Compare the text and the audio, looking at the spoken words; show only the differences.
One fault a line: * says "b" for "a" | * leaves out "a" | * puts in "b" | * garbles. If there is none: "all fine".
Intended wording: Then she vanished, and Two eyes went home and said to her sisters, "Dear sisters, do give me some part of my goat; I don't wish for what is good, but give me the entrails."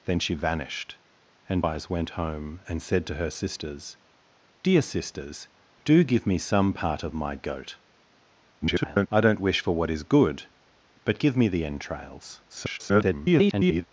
* leaves out "Two"
* garbles
* garbles